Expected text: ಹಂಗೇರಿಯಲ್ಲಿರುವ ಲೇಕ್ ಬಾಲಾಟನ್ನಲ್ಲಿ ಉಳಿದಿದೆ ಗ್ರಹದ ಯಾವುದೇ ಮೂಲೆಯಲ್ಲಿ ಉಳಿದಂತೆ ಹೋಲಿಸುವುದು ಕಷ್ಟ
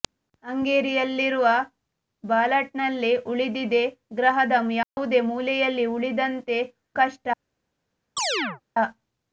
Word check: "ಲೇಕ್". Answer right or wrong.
wrong